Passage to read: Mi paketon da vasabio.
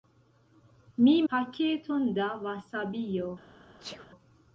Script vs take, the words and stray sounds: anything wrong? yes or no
yes